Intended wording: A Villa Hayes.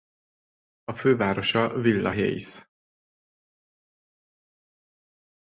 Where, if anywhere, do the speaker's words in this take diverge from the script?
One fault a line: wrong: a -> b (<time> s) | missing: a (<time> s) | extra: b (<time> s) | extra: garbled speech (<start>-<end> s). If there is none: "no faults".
extra: fővárosa (0.9 s)